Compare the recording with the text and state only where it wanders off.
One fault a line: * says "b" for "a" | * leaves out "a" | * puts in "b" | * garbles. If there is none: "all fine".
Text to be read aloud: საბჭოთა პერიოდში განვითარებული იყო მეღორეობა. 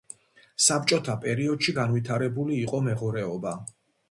all fine